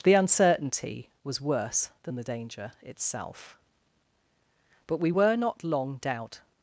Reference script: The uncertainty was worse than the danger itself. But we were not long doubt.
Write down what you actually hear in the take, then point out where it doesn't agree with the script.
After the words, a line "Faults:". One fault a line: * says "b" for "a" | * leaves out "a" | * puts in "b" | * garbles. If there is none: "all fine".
The uncertainty was worse than the danger itself. But we were not long doubt.
Faults:
all fine